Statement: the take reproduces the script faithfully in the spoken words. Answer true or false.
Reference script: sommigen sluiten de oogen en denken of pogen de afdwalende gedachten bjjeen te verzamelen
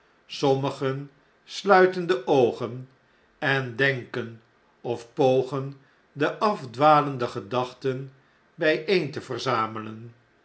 true